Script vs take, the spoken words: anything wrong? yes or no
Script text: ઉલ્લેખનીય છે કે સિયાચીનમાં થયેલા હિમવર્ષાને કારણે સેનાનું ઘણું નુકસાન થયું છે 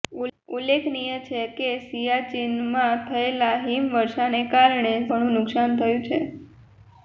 yes